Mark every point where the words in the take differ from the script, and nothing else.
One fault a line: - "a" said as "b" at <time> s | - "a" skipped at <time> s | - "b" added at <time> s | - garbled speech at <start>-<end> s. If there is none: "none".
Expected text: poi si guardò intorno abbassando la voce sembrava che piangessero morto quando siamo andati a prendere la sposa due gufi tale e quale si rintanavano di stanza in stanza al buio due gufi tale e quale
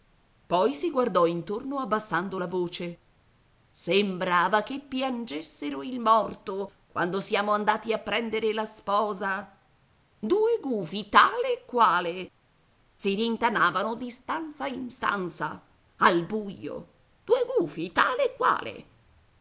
- "il" added at 5.8 s